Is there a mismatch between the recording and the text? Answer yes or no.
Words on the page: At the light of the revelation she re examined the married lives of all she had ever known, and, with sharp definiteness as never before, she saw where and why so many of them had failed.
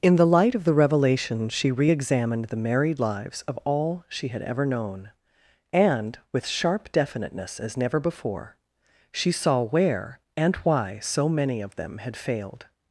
yes